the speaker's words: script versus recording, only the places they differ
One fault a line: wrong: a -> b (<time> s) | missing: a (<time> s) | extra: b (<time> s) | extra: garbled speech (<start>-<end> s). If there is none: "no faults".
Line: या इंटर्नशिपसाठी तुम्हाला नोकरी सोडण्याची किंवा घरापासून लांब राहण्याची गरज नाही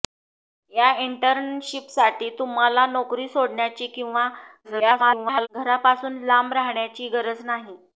extra: garbled speech (4.6-5.5 s)